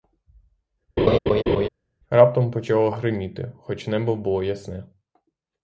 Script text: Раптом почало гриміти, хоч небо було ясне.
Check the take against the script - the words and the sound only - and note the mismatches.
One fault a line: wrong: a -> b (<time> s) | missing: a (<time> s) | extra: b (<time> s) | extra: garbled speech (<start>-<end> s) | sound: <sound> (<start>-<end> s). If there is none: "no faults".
sound: laugh (1.0-1.7 s)